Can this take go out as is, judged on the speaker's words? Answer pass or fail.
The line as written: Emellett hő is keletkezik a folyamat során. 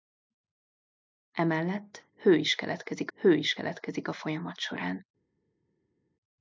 fail